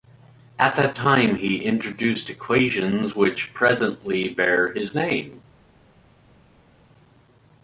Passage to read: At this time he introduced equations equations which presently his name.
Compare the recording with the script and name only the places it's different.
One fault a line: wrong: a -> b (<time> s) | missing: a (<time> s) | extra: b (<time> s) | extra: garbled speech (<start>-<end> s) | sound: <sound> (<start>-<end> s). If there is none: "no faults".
wrong: this -> that (0.8 s)
missing: equations (3.1 s)
extra: bear (4.3 s)